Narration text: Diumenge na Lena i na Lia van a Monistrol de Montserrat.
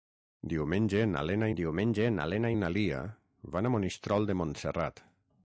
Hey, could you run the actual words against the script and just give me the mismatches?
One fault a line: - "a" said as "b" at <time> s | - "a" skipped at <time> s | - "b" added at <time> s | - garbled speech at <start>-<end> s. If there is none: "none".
- "diumenge na Lena" added at 1.6 s